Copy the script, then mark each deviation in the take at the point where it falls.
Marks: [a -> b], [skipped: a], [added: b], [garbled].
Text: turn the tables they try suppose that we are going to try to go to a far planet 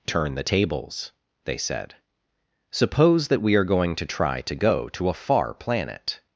turn the tables they [try -> said] suppose that we are going to try to go to a far planet